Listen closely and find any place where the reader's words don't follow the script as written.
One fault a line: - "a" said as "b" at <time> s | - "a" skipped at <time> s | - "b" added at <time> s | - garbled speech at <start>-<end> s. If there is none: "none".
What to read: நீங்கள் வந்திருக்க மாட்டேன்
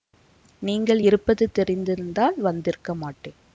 - "இருப்பது தெரிந்திருந்தால்" added at 1.0 s